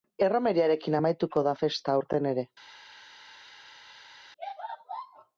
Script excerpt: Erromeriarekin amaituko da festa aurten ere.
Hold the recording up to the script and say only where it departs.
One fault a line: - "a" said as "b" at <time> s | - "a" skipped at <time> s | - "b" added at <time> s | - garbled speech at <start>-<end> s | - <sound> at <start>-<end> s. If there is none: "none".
none